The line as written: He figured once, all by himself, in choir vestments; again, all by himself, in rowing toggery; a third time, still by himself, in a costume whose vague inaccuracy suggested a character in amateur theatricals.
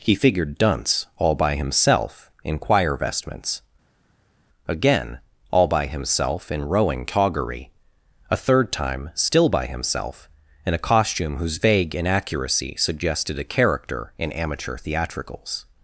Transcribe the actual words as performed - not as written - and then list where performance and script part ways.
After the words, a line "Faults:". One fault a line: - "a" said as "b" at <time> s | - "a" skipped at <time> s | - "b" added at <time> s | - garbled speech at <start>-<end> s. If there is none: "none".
He figured dunce, all by himself, in choir vestments; again, all by himself, in rowing toggery; a third time, still by himself, in a costume whose vague inaccuracy suggested a character in amateur theatricals.
Faults:
- "once" said as "dunce" at 0.6 s